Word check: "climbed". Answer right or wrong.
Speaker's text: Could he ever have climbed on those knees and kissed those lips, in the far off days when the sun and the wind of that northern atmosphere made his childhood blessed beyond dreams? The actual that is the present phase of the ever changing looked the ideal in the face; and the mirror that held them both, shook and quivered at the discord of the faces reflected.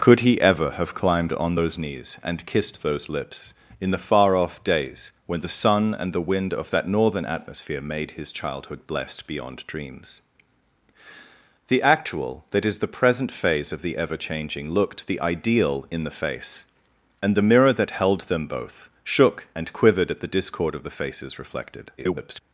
right